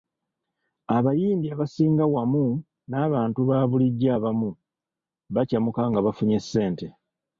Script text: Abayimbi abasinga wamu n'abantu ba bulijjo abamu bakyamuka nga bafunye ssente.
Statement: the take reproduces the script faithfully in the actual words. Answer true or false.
true